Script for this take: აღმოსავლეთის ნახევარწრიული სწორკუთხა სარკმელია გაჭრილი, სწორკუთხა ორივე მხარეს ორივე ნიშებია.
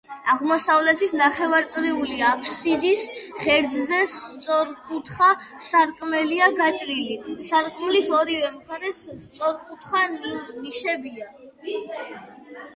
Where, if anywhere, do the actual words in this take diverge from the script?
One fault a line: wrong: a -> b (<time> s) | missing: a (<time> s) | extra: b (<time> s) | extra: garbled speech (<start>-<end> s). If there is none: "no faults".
extra: აფსიდის ღერძზე (2.3 s)
wrong: სწორკუთხა -> სარკმლის (7.5 s)
wrong: ორივე -> სწორკუთხა (9.3 s)